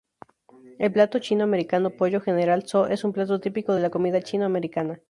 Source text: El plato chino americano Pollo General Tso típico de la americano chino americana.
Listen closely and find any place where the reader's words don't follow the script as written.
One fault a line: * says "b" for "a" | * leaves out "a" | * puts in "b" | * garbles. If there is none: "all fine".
* puts in "es un plato"
* says "comida" for "americano"